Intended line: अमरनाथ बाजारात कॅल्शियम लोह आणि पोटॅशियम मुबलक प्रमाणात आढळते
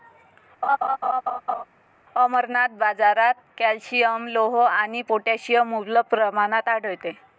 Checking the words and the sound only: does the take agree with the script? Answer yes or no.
no